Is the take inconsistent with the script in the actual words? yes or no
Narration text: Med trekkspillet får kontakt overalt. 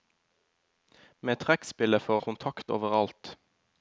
no